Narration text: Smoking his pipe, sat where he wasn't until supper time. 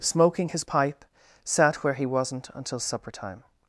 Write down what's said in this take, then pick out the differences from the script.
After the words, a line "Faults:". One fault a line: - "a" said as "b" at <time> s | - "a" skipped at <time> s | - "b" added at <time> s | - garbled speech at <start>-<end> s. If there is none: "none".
Smoking his pipe, sat where he wasn't until supper time.
Faults:
none